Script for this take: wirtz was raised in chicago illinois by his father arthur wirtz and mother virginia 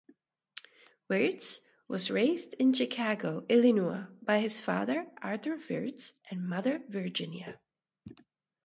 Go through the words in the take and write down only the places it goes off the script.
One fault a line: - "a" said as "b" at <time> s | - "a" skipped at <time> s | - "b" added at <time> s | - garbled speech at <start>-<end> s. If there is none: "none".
none